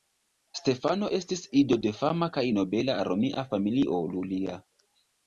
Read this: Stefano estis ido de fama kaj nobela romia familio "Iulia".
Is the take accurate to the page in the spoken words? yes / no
yes